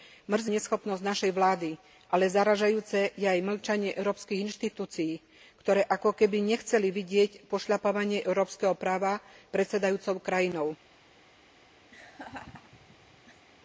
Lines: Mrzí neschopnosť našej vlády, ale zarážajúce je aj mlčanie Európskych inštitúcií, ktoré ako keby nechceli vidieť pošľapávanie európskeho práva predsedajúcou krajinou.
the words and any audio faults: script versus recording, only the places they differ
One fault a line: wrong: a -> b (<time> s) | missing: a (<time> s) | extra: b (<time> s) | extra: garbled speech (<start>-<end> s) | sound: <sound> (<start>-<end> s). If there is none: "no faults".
sound: laugh (11.9-13.5 s)